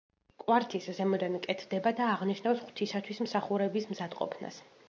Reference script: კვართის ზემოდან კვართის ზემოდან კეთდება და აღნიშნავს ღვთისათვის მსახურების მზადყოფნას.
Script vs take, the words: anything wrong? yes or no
yes